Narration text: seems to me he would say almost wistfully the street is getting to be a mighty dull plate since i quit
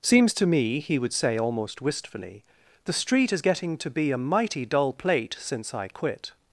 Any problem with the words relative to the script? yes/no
no